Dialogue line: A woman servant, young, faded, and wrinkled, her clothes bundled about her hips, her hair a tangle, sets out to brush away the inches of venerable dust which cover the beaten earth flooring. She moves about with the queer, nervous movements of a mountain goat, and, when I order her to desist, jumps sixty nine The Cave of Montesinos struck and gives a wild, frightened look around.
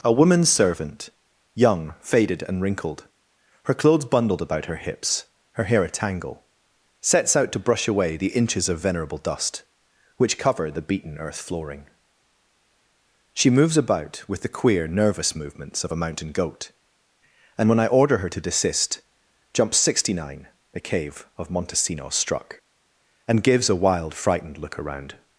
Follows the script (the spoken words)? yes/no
yes